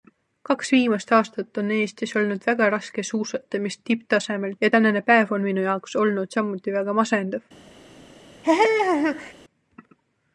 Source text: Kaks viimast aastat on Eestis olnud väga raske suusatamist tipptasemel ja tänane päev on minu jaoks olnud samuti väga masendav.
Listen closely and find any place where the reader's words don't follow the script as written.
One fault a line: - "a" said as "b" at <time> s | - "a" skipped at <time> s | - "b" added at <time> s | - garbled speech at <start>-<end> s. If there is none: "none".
none